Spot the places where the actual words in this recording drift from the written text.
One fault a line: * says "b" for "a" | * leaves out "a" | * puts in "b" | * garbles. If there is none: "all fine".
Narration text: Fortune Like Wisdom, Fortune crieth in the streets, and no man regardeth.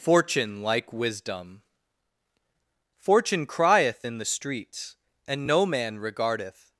all fine